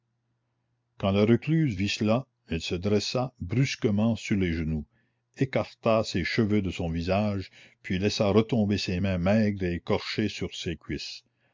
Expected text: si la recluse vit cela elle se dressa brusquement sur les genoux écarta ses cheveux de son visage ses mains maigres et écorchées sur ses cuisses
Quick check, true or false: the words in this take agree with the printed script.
false